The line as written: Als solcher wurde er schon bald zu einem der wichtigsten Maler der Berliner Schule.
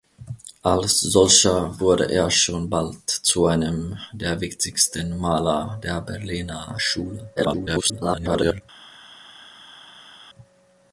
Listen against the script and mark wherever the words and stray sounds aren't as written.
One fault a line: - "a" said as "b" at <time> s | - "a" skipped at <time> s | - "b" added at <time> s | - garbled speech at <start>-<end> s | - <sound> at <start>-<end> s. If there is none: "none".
- garbled speech at 7.4-8.6 s